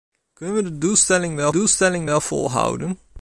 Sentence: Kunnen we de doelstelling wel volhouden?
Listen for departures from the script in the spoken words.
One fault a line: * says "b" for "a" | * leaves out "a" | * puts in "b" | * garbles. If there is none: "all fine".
* puts in "doelstelling wel"